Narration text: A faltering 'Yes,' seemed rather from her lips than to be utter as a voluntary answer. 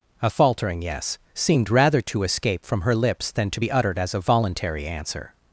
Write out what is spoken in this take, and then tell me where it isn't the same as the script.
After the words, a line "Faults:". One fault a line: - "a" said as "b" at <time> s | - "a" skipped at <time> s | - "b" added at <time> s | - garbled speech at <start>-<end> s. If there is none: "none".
A faltering 'Yes,' seemed rather to escape from her lips than to be uttered as a voluntary answer.
Faults:
- "to escape" added at 2.0 s
- "utter" said as "uttered" at 3.7 s